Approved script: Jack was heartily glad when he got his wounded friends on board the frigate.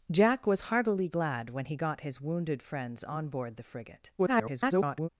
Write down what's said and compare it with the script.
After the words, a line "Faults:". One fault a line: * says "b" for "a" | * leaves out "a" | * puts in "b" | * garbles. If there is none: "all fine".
Jack was heartily glad when he got his wounded friends on board the frigate. [garbled]
Faults:
* garbles